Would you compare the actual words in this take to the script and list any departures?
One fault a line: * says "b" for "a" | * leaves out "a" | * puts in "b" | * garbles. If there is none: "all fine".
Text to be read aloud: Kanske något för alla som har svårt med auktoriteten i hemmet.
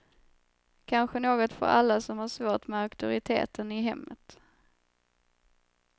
all fine